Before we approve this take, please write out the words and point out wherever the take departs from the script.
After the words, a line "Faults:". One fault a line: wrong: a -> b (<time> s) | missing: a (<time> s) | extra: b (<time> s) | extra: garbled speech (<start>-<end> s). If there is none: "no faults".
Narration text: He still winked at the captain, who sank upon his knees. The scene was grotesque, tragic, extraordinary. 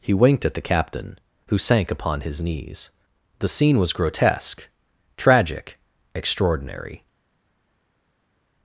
He winked at the captain, who sank upon his knees. The scene was grotesque, tragic, extraordinary.
Faults:
missing: still (0.1 s)